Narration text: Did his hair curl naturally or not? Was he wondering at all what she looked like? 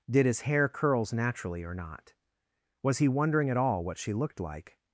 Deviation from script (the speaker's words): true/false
true